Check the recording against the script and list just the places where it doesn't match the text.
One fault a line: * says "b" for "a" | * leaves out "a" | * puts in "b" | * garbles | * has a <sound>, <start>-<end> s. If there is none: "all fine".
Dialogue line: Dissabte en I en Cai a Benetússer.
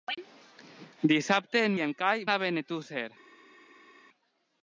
all fine